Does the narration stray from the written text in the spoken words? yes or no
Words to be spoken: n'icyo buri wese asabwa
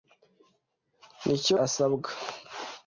yes